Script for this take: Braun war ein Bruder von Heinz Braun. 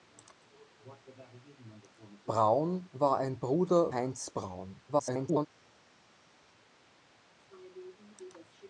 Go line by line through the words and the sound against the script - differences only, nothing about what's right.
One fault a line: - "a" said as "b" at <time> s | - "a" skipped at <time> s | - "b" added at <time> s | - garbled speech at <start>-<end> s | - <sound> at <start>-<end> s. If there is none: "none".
- "von" skipped at 3.9 s
- garbled speech at 4.9-5.5 s